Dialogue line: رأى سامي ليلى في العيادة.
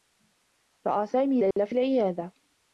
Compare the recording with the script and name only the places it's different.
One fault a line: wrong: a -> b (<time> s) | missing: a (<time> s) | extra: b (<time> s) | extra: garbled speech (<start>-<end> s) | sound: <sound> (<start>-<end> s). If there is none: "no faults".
sound: dropout (1.5-1.6 s)